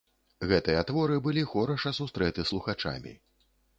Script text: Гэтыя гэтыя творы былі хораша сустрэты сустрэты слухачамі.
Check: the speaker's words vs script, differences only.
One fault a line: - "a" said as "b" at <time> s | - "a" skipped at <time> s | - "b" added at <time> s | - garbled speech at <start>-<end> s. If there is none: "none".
- "гэтыя" skipped at 0.8 s
- "сустрэты" skipped at 2.5 s